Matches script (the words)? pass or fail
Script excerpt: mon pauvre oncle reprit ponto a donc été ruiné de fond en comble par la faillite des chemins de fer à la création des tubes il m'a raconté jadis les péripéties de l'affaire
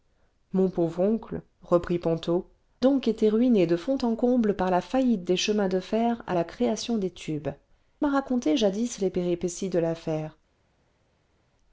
fail